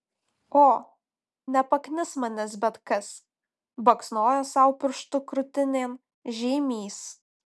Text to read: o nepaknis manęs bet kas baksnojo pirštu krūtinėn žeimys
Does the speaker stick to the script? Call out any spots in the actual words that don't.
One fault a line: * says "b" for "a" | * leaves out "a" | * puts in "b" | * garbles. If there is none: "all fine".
* puts in "sau"